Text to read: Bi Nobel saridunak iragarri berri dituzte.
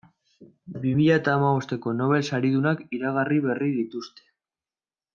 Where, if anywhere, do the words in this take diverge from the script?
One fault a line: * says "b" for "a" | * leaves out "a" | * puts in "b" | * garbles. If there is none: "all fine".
* puts in "mila eta hamabosteko"